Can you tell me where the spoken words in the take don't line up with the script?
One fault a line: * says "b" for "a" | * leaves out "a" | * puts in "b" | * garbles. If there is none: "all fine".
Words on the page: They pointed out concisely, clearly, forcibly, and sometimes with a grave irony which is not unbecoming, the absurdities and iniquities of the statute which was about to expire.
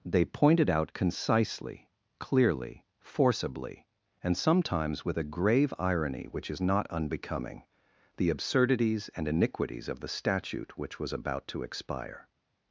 all fine